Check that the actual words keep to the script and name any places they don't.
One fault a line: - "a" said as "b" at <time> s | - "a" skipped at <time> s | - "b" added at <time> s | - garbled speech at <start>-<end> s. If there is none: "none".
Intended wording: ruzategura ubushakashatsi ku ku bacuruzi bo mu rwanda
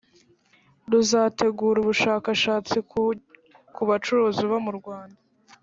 none